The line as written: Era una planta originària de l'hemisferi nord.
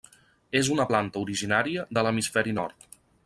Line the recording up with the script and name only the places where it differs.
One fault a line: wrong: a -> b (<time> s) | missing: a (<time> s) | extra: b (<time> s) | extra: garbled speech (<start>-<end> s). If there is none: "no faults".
wrong: Era -> És (0.6 s)